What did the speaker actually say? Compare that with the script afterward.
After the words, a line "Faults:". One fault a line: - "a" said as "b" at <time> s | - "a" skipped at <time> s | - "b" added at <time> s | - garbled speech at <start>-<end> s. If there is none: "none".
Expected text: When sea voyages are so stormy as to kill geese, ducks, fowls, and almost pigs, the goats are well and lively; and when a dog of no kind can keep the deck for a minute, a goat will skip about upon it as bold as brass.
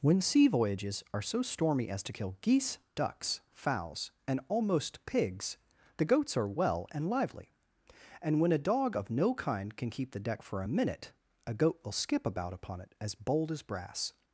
When sea voyages are so stormy as to kill geese, ducks, fowls, and almost pigs, the goats are well and lively; and when a dog of no kind can keep the deck for a minute, a goat will skip about upon it as bold as brass.
Faults:
none